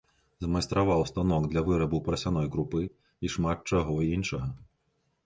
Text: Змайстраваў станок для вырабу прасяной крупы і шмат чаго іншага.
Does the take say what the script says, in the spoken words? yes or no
yes